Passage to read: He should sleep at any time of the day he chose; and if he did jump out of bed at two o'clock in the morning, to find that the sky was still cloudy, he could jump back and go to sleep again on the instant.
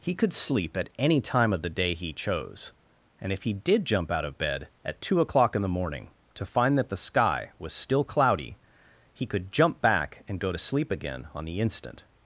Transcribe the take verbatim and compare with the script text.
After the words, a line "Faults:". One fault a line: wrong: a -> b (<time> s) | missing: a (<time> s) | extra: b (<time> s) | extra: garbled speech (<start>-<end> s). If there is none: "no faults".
He could sleep at any time of the day he chose; and if he did jump out of bed at two o'clock in the morning, to find that the sky was still cloudy, he could jump back and go to sleep again on the instant.
Faults:
wrong: should -> could (0.1 s)